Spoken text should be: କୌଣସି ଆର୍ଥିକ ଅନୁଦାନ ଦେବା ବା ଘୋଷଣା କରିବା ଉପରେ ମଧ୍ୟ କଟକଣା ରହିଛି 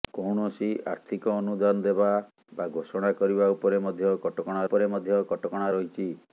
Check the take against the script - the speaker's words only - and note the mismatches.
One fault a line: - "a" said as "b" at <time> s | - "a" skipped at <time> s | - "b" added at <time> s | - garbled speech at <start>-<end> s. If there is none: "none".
- "ଉପରେ ମଧ୍ୟ କଟକଣା" added at 4.7 s